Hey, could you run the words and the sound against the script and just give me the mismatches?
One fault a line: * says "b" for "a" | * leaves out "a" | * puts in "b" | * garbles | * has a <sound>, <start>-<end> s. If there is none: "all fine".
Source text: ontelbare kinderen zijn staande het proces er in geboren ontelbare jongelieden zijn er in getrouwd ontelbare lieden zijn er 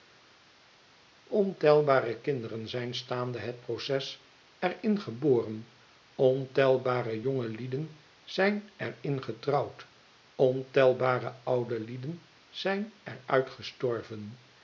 * puts in "oude"